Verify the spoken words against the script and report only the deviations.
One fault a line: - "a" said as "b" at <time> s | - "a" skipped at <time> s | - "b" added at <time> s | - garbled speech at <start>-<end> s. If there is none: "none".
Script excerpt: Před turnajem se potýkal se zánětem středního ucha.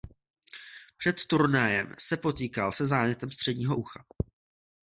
none